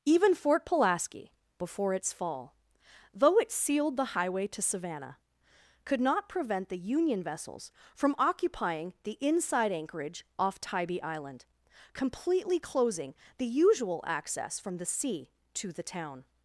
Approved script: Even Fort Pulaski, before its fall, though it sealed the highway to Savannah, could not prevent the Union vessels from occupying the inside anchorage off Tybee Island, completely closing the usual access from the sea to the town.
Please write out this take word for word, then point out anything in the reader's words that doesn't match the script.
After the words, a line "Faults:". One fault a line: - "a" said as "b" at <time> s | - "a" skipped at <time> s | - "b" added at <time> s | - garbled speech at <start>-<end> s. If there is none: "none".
Even Fort Pulaski, before its fall, though it sealed the highway to Savannah, could not prevent the Union vessels from occupying the inside anchorage off Tybee Island, completely closing the usual access from the sea to the town.
Faults:
none